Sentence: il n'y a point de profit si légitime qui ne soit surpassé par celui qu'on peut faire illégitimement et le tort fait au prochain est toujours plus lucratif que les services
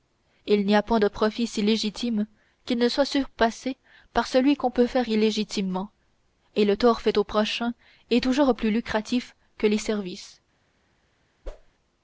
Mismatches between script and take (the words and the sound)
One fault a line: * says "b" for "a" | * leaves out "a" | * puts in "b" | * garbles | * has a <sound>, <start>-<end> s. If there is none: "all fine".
* has a whoosh, 11.4-11.7 s